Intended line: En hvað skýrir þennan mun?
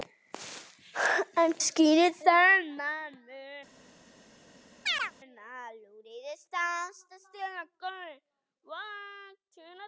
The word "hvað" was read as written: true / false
false